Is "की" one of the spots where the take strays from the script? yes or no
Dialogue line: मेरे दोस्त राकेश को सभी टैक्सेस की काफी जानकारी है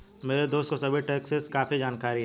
yes